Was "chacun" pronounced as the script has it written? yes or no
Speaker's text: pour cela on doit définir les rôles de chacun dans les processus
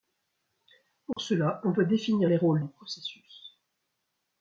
no